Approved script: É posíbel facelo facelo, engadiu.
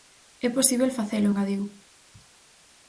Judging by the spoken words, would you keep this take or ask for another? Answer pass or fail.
fail